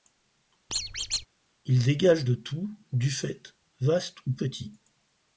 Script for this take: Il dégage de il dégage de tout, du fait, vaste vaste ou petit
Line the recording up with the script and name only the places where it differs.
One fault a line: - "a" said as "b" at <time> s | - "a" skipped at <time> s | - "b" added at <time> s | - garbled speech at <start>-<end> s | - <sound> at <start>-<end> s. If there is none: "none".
- squeak at 0.7-1.3 s
- "il dégage de" skipped at 2.3 s
- "vaste" skipped at 4.3 s